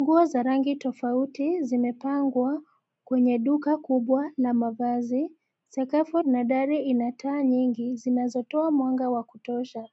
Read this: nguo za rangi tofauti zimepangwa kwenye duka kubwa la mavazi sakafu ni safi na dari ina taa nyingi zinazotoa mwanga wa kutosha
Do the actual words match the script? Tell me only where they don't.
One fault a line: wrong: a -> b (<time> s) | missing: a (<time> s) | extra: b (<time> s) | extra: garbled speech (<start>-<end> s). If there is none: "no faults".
missing: ni safi (6.2 s)